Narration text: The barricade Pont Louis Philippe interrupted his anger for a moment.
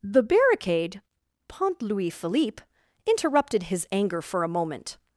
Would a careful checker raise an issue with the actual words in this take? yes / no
no